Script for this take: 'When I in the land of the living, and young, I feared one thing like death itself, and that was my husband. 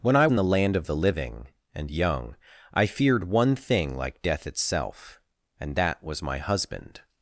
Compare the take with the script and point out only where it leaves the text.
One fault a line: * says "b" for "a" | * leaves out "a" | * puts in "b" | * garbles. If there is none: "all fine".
all fine